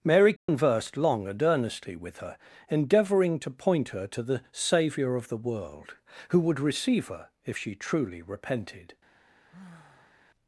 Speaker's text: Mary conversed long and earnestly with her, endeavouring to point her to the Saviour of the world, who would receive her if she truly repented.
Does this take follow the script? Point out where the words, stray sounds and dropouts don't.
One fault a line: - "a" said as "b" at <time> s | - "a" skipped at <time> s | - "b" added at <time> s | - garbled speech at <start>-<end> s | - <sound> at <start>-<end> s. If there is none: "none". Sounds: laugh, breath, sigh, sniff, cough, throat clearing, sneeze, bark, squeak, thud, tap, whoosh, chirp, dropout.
- dropout at 0.4-0.5 s
- sigh at 9.5-10.2 s